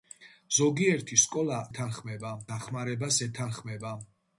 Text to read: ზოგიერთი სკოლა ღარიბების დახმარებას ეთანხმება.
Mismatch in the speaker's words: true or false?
true